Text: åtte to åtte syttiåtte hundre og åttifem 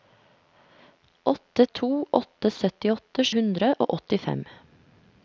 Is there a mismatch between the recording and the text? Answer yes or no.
no